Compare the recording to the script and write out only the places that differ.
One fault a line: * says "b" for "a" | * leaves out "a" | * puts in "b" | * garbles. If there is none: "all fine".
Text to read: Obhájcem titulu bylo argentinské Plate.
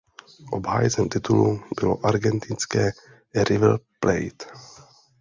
* puts in "River"